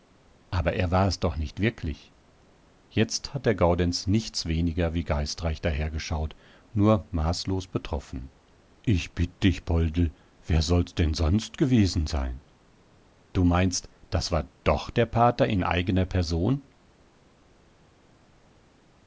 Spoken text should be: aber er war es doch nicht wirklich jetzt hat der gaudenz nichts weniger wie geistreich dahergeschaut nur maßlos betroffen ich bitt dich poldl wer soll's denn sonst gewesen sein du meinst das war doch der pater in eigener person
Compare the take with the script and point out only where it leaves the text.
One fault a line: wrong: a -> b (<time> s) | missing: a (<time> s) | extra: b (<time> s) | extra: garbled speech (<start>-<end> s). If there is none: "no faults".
no faults